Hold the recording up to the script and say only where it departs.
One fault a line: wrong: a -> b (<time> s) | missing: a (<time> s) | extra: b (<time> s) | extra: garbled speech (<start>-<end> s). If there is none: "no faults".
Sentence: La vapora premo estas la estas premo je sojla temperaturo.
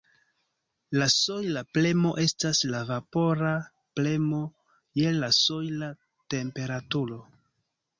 wrong: vapora -> sojla (1.1 s)
wrong: estas -> vapora (2.9 s)
extra: la (5.2 s)